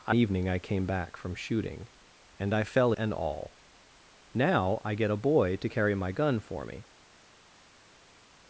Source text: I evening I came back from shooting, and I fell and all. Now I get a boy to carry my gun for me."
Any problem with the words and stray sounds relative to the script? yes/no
no